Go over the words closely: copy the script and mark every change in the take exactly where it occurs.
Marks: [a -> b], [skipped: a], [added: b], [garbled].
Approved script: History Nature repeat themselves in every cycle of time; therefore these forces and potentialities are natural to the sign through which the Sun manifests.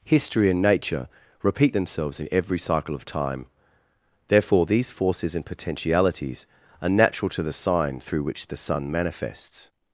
History [added: and] Nature repeat themselves in every cycle of time; therefore these forces and potentialities are natural to the sign through which the Sun manifests.